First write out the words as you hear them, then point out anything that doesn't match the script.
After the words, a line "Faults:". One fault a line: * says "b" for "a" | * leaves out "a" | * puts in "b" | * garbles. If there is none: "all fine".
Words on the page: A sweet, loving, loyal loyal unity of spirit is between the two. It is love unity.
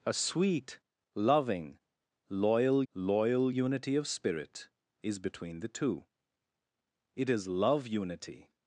A sweet, loving, loyal loyal unity of spirit is between the two. It is love unity.
Faults:
all fine